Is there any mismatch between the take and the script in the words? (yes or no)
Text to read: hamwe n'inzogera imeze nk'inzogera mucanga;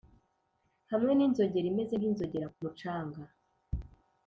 no